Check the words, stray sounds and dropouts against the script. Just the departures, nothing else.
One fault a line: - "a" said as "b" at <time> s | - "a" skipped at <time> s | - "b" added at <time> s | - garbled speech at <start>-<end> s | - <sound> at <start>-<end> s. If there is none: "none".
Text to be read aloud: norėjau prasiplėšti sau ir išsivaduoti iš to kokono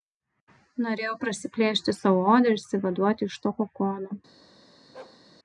- "odą" added at 2.2 s
- bark at 4.9-5.2 s